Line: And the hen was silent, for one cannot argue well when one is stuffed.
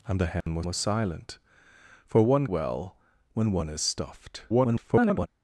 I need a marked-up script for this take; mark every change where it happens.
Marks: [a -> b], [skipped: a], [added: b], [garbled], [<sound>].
And the hen [dropout] was [added: was] silent, for one [skipped: cannot argue] well when one is stuffed. [garbled]